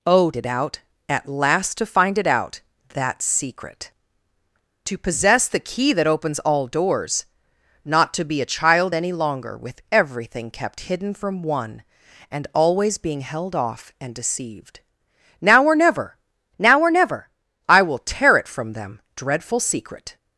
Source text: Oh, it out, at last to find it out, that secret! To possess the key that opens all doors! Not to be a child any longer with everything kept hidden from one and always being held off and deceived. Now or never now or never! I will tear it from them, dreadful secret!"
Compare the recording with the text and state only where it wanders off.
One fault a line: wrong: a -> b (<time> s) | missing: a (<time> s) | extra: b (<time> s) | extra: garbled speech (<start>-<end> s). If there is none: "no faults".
no faults